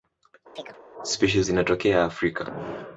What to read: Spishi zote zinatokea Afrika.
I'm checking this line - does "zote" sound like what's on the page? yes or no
no